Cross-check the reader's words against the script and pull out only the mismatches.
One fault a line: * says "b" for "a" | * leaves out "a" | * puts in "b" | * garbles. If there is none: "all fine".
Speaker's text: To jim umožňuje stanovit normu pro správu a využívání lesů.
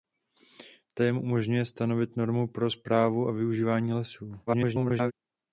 * garbles